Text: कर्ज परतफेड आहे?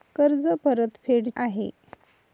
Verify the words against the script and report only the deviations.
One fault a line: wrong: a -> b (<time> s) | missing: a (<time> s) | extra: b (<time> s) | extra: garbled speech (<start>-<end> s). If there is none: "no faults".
no faults